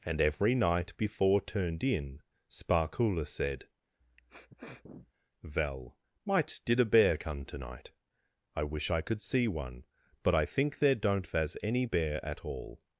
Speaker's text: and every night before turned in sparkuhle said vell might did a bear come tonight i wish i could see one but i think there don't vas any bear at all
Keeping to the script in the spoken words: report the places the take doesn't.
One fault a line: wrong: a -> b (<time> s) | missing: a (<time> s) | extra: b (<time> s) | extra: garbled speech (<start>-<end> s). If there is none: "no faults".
no faults